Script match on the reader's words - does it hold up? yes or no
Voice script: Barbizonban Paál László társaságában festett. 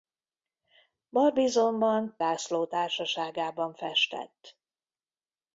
no